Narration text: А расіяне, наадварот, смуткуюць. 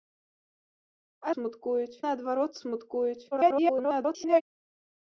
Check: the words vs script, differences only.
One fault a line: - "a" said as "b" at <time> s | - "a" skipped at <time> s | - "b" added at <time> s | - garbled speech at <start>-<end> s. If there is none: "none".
- "расіяне" said as "смуткуюць" at 1.3 s
- garbled speech at 3.3-4.4 s